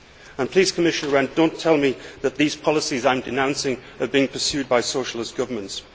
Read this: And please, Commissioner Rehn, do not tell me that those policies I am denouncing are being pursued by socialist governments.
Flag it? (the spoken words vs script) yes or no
yes